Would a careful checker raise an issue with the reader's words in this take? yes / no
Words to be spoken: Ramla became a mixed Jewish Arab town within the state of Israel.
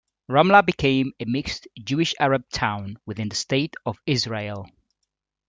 no